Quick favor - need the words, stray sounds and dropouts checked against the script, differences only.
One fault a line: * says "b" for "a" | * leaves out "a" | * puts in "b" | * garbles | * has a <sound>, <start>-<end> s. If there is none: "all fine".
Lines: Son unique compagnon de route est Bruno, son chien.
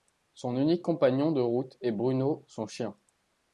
all fine